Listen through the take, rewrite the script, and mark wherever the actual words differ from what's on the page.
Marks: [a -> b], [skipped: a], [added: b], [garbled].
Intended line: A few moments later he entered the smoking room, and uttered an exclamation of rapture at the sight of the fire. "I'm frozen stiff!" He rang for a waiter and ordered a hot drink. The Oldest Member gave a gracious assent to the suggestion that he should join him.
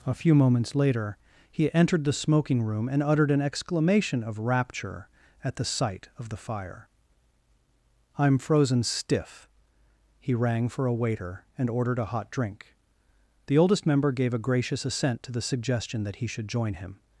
A few moments later he entered the smoking room, and uttered an exclamation of rapture at the sight of the fire. "I'm frozen stiff!" He rang for a waiter and ordered a hot drink. The Oldest Member gave a gracious assent to the suggestion that he should join him.